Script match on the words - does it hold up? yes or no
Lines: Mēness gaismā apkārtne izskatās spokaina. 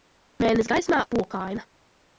no